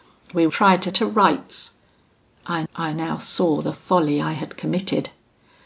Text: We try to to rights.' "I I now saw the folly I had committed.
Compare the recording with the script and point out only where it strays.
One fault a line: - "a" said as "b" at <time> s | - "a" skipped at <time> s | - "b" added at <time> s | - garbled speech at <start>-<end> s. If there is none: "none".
none